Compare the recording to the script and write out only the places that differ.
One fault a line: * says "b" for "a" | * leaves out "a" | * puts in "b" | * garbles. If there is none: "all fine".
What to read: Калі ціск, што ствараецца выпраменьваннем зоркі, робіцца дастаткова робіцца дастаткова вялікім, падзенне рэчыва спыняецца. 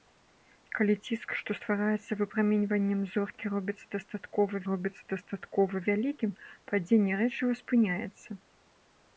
all fine